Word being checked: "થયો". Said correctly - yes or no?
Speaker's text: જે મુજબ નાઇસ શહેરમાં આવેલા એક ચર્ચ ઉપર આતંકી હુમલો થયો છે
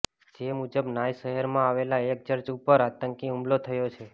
yes